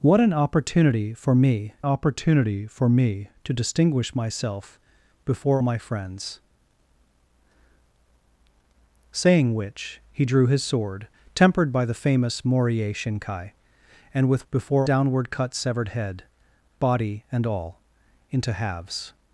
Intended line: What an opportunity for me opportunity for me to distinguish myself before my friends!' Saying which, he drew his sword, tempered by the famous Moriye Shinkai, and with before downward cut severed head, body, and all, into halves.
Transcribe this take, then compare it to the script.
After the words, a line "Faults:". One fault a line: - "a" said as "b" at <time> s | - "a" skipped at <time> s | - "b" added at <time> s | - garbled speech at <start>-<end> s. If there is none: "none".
What an opportunity for me opportunity for me to distinguish myself before my friends!' Saying which, he drew his sword, tempered by the famous Moriye Shinkai, and with before downward cut severed head, body, and all, into halves.
Faults:
none